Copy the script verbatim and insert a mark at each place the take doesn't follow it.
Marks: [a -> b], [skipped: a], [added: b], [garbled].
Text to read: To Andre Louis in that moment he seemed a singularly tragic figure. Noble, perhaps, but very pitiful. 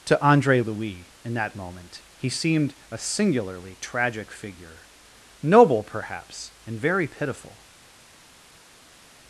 To Andre Louis in that moment he seemed a singularly tragic figure. Noble, perhaps, [but -> and] very pitiful.